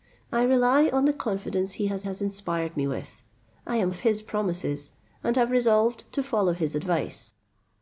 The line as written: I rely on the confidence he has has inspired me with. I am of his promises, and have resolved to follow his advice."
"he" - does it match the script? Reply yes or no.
yes